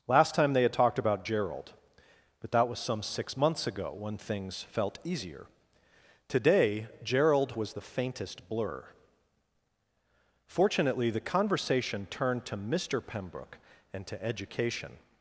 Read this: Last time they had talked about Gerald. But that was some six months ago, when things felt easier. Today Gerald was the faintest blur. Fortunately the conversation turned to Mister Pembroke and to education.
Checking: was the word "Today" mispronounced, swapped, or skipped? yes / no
no